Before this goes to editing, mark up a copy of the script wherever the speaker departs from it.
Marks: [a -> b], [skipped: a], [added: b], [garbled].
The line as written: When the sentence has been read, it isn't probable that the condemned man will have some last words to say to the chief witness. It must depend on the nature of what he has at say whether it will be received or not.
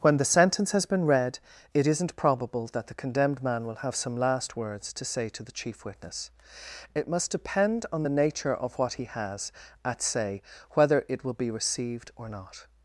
When the sentence has been read, it isn't probable that the condemned man will have some last words to say to the chief witness. It must depend on the nature of what he has at say whether it will be received or not.